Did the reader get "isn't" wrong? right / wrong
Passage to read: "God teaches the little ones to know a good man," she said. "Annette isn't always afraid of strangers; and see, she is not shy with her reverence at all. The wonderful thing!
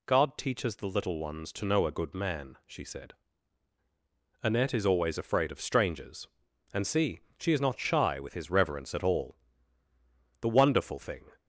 wrong